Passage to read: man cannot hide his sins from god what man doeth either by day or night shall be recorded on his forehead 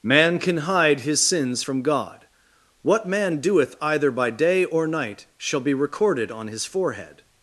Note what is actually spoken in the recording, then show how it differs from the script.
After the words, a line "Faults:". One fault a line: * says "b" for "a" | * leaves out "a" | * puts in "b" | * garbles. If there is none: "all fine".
man can hide his sins from god what man doeth either by day or night shall be recorded on his forehead
Faults:
* says "can" for "cannot"